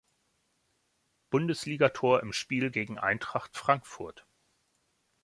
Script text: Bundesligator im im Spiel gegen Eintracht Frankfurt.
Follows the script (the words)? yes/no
no